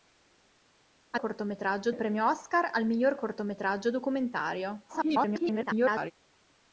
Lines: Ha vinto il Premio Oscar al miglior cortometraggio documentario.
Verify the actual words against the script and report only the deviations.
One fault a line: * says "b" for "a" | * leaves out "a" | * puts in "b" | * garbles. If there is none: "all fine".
* says "cortometraggio" for "vinto"
* garbles